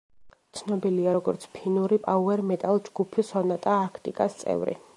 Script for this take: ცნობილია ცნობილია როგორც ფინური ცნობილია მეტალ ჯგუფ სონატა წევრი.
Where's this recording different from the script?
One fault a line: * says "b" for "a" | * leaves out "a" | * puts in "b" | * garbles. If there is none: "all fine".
* leaves out "ცნობილია"
* says "პაუერ" for "ცნობილია"
* puts in "არქტიკას"